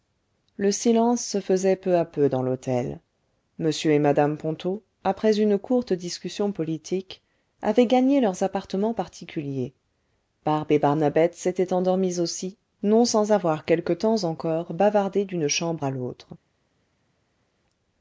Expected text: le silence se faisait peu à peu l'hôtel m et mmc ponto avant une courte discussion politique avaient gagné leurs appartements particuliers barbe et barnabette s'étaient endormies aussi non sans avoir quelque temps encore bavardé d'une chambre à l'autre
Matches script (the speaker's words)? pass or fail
fail